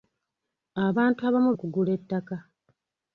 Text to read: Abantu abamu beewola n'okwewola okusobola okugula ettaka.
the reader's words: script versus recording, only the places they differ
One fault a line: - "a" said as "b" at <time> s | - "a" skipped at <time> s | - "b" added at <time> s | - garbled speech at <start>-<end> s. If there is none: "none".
- "beewola n'okwewola okusobola" skipped at 1.5 s